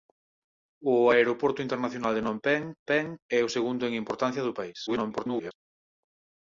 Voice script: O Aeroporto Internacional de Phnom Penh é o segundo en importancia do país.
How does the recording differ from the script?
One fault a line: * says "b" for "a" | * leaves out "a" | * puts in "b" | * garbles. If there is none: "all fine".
* puts in "Penh"
* garbles